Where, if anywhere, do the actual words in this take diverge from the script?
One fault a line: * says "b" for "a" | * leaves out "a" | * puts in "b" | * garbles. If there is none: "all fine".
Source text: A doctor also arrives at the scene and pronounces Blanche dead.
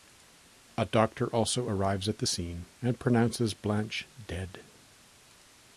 all fine